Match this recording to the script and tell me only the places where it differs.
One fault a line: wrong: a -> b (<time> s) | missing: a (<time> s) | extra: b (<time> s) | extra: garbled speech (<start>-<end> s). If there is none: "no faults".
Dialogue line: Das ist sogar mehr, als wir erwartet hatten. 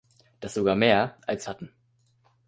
missing: ist (0.6 s)
missing: wir erwartet (1.5 s)